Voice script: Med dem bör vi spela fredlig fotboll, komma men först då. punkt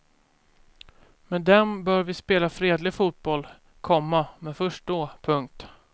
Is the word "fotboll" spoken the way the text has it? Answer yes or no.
yes